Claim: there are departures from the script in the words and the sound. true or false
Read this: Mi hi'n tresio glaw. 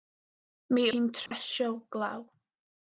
true